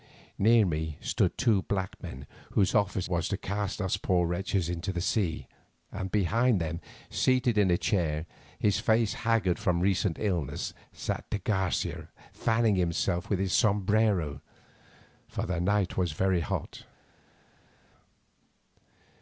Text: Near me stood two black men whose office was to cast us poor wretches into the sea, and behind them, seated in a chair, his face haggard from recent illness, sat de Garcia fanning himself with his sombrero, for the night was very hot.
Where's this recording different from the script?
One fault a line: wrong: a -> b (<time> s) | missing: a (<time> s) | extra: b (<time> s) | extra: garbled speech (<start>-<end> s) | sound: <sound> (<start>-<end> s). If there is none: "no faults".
no faults